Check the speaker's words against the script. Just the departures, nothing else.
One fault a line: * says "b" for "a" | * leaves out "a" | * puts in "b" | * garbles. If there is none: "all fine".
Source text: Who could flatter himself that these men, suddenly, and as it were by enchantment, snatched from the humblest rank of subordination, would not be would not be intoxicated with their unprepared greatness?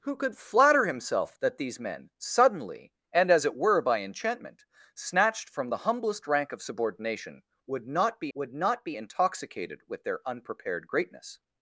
all fine